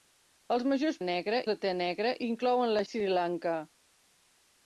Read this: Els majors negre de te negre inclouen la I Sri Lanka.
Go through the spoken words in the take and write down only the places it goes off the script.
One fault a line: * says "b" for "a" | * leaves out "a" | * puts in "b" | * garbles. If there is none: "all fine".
all fine